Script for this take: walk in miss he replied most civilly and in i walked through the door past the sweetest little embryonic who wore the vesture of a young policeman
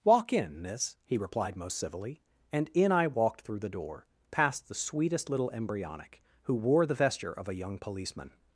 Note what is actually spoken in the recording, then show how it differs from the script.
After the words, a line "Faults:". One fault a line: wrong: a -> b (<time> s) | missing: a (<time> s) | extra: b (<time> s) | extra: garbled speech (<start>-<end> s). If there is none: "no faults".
walk in miss he replied most civilly and in i walked through the door past the sweetest little embryonic who wore the vesture of a young policeman
Faults:
no faults